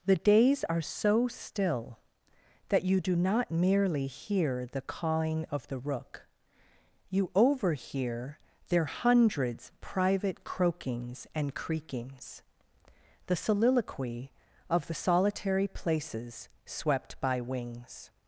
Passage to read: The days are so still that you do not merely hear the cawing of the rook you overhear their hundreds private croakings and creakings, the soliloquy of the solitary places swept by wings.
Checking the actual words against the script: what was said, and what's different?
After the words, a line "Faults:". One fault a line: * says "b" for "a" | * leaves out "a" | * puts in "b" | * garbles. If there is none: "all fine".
The days are so still that you do not merely hear the cawing of the rook you overhear their hundreds private croakings and creakings, the soliloquy of the solitary places swept by wings.
Faults:
all fine